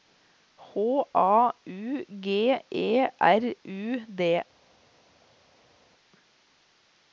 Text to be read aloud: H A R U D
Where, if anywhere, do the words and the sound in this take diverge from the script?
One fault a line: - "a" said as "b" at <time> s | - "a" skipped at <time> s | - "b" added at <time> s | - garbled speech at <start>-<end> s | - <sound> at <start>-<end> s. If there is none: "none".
- "U G E" added at 1.6 s